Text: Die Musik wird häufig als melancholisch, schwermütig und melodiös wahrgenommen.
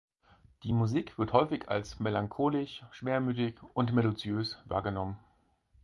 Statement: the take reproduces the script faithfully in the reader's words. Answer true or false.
true